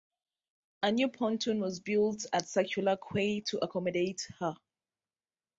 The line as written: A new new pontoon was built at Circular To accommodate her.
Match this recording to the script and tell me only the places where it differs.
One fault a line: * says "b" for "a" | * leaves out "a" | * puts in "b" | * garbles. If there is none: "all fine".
* leaves out "new"
* puts in "Quay"